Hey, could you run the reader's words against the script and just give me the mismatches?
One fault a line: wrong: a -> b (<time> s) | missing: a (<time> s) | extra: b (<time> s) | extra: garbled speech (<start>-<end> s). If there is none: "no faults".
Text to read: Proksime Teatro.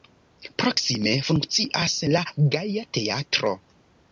extra: funkcias la Gaja (1.3 s)